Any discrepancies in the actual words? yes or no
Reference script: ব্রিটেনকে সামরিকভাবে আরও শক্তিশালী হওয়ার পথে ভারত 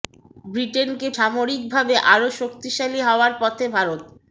no